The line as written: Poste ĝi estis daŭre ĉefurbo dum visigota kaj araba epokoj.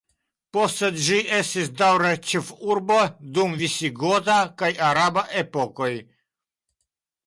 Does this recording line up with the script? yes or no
yes